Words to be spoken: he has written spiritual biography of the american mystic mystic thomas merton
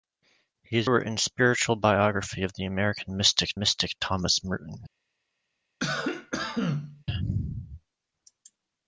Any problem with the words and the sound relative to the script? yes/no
yes